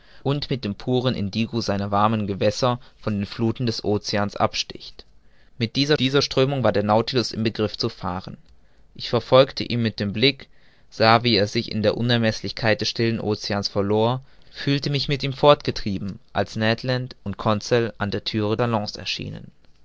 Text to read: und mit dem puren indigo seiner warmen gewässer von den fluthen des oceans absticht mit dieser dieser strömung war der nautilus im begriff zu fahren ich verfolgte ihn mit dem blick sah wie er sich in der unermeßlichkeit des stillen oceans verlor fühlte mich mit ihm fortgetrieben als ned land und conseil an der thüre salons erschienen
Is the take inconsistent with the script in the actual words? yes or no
no